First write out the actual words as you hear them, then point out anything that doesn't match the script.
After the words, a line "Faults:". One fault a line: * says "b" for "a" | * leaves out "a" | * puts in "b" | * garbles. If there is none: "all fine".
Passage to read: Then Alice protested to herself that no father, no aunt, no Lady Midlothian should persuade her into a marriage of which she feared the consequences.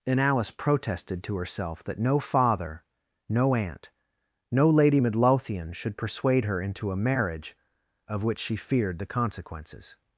And Alice protested to herself that no father, no aunt, no Lady Midlothian should persuade her into a marriage of which she feared the consequences.
Faults:
* says "And" for "Then"